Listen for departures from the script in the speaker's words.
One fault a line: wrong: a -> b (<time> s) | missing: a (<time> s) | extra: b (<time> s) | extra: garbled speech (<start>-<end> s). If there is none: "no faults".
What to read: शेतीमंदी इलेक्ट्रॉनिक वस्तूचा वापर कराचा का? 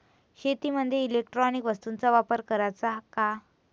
no faults